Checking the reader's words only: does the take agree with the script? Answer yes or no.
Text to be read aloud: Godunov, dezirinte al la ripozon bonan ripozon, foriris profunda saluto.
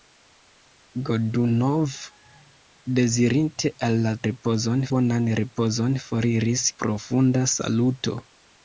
yes